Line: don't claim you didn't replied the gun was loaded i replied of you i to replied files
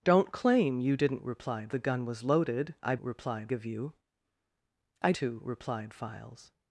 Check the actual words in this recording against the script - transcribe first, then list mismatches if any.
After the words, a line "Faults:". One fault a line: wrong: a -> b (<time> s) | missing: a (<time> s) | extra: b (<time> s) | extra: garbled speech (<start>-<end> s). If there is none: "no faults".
don't claim you didn't replied the gun was loaded i replied of you i to replied files
Faults:
no faults